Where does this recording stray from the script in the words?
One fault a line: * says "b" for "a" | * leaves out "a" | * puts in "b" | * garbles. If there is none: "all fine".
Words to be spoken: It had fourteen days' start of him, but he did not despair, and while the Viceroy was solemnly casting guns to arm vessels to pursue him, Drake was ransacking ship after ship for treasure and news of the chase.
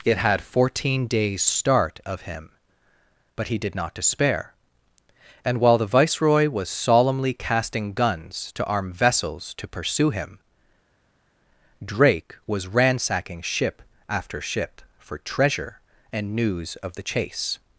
all fine